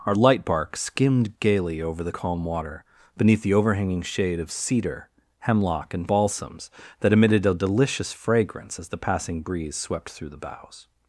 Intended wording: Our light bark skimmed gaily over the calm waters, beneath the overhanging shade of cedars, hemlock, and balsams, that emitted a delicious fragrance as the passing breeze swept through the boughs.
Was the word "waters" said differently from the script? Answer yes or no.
yes